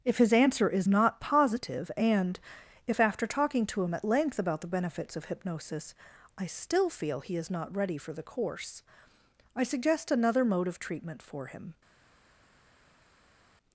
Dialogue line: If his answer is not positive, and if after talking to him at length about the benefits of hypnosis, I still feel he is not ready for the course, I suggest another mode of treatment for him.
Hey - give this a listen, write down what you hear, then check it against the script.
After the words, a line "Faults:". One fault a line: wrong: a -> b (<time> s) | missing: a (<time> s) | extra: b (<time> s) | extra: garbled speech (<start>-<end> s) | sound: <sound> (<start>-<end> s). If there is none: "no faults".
If his answer is not positive, and if after talking to him at length about the benefits of hypnosis, I still feel he is not ready for the course, I suggest another mode of treatment for him.
Faults:
no faults